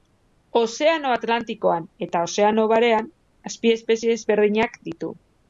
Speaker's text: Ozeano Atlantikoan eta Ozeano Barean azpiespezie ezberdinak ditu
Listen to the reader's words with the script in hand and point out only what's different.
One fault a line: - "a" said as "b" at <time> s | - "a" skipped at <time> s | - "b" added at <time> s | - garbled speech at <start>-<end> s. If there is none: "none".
none